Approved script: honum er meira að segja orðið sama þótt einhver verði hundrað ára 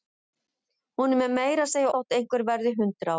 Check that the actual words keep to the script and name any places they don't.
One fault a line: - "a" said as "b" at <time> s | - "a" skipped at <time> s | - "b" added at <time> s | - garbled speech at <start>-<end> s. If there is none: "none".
- "orðið sama" skipped at 1.9 s